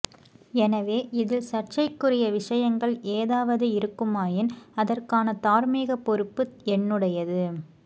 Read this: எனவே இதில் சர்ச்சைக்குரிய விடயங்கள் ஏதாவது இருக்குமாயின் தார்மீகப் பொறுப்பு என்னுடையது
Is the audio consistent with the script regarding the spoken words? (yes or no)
no